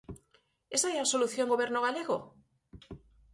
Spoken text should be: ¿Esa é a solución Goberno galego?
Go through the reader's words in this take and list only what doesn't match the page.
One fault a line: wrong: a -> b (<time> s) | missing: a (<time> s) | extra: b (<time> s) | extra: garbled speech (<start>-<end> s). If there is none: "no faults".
no faults